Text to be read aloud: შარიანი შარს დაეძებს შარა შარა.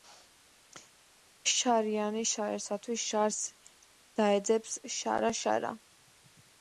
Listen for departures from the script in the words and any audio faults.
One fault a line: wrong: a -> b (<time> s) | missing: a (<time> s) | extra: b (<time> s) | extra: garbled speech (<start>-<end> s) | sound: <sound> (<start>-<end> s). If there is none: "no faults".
extra: შარისათვის (2.3 s)